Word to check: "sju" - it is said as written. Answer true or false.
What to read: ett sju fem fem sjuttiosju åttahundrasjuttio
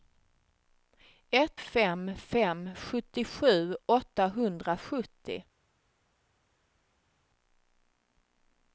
false